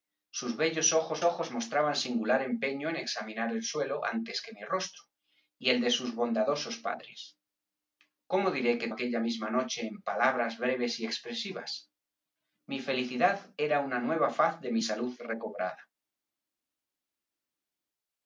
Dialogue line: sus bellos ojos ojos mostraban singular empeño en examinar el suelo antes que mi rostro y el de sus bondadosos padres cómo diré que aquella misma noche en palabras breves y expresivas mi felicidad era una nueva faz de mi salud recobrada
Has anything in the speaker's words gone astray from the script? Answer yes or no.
no